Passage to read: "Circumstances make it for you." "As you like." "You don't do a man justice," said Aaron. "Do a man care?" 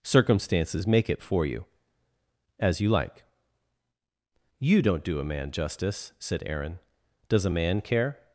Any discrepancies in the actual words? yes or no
yes